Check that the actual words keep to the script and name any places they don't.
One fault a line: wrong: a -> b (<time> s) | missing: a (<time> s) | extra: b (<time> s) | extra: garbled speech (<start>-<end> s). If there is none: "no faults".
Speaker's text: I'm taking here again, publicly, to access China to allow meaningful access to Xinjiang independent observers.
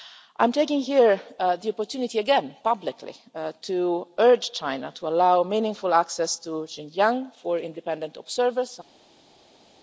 extra: the opportunity (1.4 s)
wrong: access -> urge (4.2 s)
extra: for (7.4 s)